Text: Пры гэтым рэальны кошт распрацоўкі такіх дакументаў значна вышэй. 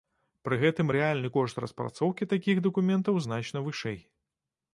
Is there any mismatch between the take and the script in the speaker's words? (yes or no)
no